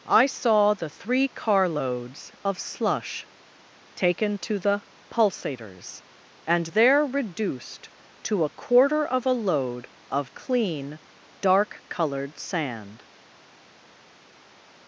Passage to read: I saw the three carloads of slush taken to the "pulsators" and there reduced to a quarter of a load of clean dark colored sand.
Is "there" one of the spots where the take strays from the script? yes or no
no